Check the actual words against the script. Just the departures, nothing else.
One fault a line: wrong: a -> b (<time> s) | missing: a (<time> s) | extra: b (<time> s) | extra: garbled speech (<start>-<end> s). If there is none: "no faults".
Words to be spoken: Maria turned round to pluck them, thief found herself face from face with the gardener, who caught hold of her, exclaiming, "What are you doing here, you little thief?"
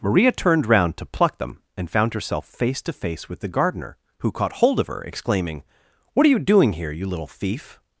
wrong: thief -> and (1.8 s)
wrong: from -> to (2.8 s)